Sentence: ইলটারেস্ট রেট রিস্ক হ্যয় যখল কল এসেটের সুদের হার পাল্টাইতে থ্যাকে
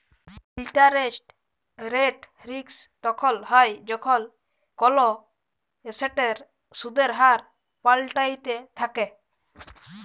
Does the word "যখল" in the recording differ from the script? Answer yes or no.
no